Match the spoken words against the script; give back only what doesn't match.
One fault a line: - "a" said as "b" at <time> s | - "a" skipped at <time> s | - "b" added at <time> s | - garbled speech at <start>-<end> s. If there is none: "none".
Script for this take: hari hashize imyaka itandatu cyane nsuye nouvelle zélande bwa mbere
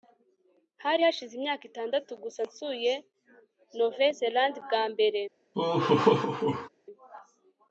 - "cyane" said as "gusa" at 2.2 s